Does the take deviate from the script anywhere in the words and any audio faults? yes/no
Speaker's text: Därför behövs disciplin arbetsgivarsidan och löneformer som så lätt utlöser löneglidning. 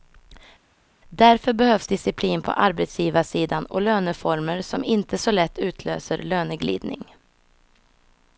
yes